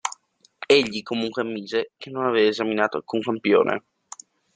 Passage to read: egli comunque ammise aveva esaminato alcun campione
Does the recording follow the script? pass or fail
fail